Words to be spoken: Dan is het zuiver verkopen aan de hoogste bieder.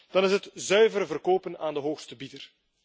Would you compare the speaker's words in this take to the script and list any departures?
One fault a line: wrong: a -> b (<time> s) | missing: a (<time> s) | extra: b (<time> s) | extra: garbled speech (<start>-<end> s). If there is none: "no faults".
no faults